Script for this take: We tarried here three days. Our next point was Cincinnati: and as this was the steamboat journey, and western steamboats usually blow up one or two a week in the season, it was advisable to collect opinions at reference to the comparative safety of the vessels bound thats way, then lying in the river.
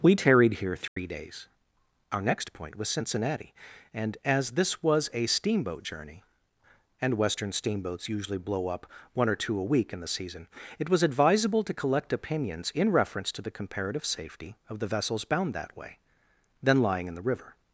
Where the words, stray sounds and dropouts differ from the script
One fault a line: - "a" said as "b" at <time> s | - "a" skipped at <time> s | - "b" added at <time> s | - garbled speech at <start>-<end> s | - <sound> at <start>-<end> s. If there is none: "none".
- dropout at 0.9-1.0 s
- "the" said as "a" at 5.1 s
- "at" said as "in" at 12.7 s
- "thats" said as "that" at 15.5 s